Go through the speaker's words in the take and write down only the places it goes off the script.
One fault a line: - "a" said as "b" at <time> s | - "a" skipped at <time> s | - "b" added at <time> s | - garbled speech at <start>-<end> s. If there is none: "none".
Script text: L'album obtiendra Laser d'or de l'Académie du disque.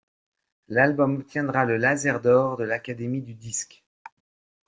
- "le" added at 1.6 s